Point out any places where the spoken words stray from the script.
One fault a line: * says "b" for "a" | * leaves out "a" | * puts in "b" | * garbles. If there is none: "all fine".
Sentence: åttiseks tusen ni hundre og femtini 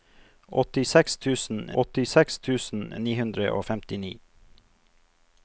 * puts in "åttiseks tusen"